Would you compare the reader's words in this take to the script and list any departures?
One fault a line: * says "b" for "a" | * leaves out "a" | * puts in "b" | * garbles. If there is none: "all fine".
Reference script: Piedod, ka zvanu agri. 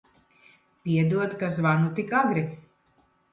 * puts in "tik"